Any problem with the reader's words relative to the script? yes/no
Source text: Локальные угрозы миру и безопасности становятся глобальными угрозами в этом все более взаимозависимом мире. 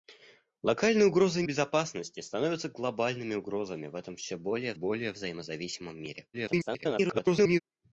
yes